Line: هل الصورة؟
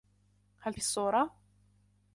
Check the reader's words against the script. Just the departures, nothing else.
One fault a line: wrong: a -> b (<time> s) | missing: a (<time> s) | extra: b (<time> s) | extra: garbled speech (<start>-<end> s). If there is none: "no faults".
no faults